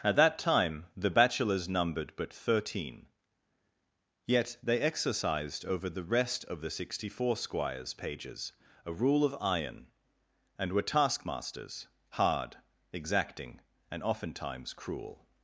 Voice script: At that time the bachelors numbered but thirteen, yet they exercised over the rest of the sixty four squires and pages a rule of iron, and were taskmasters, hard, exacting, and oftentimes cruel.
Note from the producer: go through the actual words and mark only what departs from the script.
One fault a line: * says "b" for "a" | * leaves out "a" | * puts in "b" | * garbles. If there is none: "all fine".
* leaves out "and"